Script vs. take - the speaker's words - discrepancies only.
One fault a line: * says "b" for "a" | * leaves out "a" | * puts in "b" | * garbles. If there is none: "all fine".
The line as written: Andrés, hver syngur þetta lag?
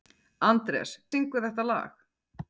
* leaves out "hver"